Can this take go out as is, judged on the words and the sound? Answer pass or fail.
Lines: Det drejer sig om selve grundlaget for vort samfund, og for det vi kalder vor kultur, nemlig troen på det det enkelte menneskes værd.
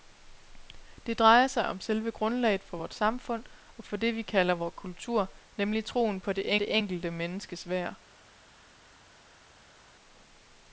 pass